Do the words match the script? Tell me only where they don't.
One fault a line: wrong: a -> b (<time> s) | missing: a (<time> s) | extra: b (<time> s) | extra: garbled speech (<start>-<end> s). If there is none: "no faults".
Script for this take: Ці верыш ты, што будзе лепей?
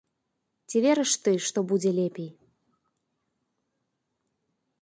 no faults